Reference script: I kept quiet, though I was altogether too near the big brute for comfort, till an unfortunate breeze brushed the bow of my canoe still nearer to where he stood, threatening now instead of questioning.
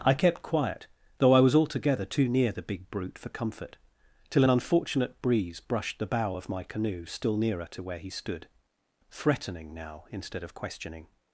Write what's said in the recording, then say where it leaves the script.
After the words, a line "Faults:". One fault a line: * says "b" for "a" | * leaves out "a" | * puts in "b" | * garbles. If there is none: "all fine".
I kept quiet, though I was altogether too near the big brute for comfort, till an unfortunate breeze brushed the bow of my canoe still nearer to where he stood, threatening now instead of questioning.
Faults:
all fine